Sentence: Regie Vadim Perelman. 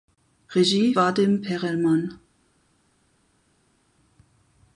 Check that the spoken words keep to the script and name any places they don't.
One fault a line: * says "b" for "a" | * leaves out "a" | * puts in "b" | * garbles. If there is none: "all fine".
all fine